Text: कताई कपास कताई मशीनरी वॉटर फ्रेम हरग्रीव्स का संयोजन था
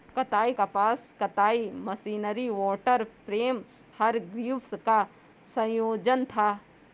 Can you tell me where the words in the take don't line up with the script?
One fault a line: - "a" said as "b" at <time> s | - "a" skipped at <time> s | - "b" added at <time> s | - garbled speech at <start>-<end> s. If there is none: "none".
none